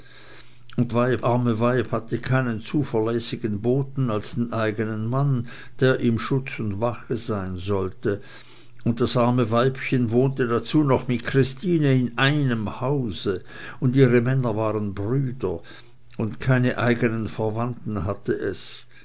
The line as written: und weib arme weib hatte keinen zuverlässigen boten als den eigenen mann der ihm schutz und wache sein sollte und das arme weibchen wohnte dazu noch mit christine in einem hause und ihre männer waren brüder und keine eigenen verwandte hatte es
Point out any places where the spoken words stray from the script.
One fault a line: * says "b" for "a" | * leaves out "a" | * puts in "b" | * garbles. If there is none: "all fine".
all fine